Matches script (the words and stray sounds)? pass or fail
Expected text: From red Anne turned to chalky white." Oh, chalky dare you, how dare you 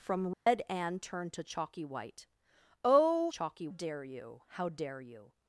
fail